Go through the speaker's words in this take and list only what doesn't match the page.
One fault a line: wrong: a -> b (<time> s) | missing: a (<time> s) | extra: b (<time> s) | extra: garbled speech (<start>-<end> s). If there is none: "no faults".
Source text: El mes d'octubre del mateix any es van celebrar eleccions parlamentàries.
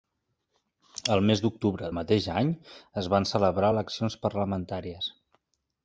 missing: del (1.9 s)